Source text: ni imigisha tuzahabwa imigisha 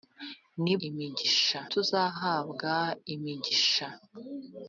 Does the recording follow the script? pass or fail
pass